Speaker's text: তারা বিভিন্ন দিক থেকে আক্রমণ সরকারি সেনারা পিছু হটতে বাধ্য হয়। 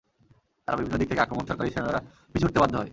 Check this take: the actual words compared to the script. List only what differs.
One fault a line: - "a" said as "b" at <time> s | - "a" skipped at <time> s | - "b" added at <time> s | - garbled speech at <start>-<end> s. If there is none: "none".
none